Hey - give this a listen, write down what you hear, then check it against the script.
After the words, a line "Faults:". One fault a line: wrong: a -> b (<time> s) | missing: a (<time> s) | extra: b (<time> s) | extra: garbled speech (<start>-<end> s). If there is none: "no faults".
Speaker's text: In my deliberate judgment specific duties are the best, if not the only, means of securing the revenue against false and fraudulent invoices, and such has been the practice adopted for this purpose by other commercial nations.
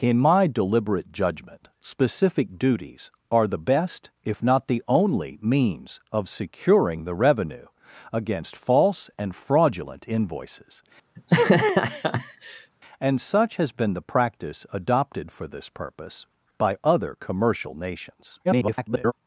In my deliberate judgment specific duties are the best, if not the only, means of securing the revenue against false and fraudulent invoices, and such has been the practice adopted for this purpose by other commercial nations. [garbled]
Faults:
extra: garbled speech (18.4-19.1 s)